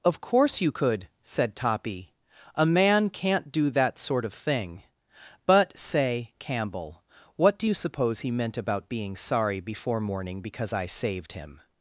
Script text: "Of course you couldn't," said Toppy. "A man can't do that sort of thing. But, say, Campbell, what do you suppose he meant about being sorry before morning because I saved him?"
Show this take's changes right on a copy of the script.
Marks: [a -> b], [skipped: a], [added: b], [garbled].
"Of course you [couldn't," -> could] said Toppy. "A man can't do that sort of thing. But, say, Campbell, what do you suppose he meant about being sorry before morning because I saved him?"